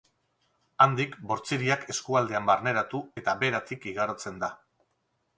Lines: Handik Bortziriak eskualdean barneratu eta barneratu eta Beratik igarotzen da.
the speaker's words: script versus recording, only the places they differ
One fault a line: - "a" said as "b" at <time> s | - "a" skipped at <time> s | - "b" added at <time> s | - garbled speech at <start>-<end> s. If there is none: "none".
- "barneratu eta" skipped at 3.4 s